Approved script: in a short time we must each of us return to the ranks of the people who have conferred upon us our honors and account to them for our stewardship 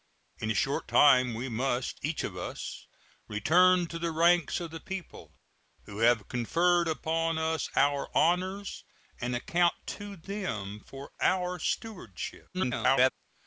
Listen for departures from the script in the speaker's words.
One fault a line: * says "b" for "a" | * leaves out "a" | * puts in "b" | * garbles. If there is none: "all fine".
* garbles